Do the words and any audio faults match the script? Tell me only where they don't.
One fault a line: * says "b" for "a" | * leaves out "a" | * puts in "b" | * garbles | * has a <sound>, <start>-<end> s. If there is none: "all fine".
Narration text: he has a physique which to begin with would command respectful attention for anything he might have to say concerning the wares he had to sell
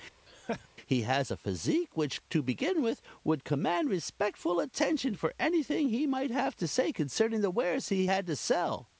* has a laugh, 0.3-0.7 s